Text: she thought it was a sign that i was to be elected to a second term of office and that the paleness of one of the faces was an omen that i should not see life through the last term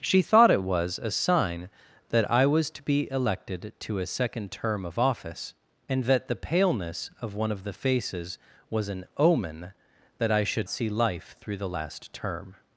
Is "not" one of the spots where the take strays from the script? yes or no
yes